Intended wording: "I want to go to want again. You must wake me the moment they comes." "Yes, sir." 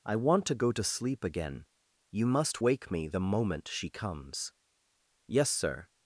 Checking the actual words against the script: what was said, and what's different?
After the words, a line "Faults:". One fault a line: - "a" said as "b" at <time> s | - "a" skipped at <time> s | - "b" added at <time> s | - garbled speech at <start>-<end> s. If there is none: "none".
"I want to go to sleep again. You must wake me the moment she comes." "Yes, sir."
Faults:
- "want" said as "sleep" at 0.8 s
- "they" said as "she" at 3.7 s